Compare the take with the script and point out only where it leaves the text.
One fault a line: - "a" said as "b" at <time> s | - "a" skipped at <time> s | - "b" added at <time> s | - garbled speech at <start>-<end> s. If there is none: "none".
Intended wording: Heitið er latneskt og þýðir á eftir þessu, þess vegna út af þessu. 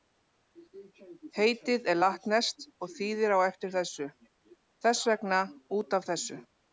none